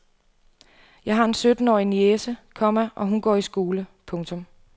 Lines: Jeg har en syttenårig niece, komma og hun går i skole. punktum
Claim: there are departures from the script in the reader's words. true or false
false